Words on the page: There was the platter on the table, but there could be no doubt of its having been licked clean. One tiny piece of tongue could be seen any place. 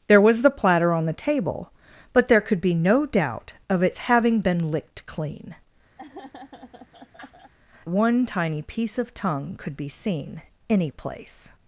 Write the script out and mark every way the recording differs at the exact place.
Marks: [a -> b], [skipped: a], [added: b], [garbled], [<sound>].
There was the platter on the table, but there could be no doubt of its having been licked clean. [laugh] One tiny piece of tongue could be seen any place.